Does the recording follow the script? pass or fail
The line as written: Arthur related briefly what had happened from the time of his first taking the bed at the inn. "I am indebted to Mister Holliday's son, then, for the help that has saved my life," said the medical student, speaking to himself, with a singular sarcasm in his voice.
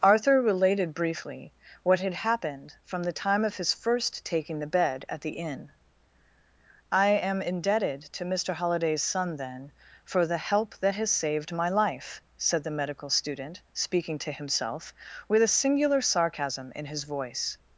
pass